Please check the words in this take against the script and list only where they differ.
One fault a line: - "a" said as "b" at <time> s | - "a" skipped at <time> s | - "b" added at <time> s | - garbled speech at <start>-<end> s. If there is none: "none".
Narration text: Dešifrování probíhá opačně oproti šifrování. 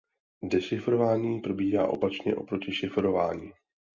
none